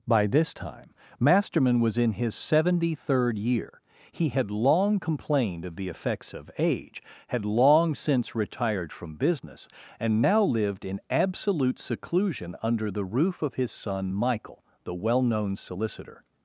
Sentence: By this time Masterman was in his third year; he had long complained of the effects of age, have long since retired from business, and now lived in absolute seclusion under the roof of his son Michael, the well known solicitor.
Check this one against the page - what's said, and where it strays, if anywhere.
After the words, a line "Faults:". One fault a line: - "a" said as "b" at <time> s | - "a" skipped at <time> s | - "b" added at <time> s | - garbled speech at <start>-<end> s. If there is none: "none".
By this time Masterman was in his seventy third year; he had long complained of the effects of age, had long since retired from business, and now lived in absolute seclusion under the roof of his son Michael, the well known solicitor.
Faults:
- "seventy" added at 2.3 s
- "have" said as "had" at 7.3 s